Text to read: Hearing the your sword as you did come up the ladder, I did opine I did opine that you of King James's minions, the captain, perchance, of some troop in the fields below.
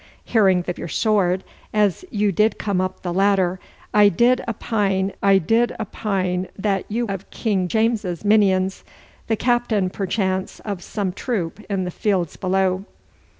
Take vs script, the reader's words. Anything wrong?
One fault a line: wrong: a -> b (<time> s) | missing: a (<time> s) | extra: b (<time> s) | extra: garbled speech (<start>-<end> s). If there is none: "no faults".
no faults